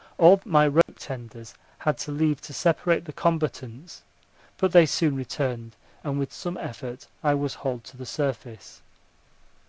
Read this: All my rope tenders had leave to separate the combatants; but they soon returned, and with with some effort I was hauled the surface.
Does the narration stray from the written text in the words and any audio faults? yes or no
yes